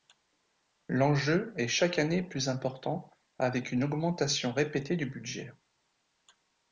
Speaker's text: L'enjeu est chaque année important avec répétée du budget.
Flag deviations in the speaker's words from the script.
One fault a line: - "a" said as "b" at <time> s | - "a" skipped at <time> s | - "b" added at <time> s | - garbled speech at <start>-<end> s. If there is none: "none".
- "plus" added at 2.2 s
- "une augmentation" added at 3.7 s